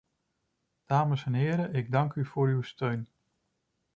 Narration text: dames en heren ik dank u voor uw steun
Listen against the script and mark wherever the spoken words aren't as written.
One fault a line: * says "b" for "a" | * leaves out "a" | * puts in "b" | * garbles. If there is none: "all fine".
all fine